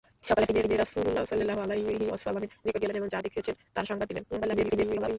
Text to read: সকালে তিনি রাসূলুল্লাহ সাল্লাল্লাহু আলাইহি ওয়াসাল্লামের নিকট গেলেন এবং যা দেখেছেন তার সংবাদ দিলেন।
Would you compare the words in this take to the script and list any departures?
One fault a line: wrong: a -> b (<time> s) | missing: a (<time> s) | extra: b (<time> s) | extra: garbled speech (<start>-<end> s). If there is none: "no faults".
extra: তিনি (0.6 s)
extra: garbled speech (4.3-5.2 s)